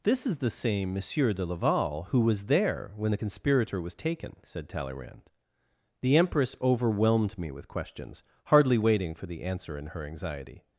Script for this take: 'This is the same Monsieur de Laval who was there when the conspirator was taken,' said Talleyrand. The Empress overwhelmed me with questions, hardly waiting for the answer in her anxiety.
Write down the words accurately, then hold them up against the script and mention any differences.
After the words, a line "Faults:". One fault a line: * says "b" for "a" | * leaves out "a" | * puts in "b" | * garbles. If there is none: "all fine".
'This is the same Monsieur de Laval who was there when the conspirator was taken,' said Talleyrand. The Empress overwhelmed me with questions, hardly waiting for the answer in her anxiety.
Faults:
all fine